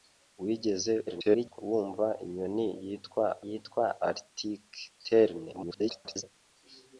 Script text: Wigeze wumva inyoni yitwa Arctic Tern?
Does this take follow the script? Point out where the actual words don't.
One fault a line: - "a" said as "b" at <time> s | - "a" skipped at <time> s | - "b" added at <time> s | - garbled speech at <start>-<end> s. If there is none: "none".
- garbled speech at 1.1-1.6 s
- "yitwa" added at 3.5 s
- garbled speech at 5.5-6.2 s